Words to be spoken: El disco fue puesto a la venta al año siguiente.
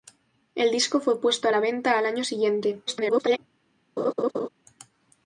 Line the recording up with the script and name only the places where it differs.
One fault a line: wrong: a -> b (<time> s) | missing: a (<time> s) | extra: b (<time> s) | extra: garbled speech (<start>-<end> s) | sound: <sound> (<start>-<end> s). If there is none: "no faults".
extra: garbled speech (2.9-3.4 s)
sound: laugh (4.0-4.5 s)